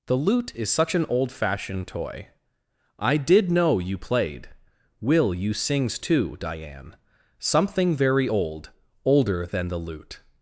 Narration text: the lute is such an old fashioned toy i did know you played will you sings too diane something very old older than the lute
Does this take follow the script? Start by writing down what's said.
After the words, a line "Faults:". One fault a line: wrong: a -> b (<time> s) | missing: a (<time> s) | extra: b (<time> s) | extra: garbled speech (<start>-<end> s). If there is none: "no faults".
the lute is such an old fashioned toy i did know you played will you sings too diane something very old older than the lute
Faults:
no faults